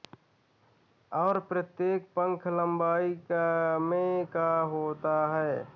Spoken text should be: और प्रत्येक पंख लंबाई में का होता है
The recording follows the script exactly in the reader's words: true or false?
true